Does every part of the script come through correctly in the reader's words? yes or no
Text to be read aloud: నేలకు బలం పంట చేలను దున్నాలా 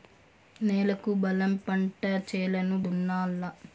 yes